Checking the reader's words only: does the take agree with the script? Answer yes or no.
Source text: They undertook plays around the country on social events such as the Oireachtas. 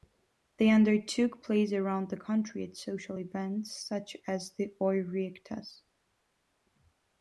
no